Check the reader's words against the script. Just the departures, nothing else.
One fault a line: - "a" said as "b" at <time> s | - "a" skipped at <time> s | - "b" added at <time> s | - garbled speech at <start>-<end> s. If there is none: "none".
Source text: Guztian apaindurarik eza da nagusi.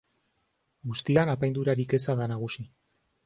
none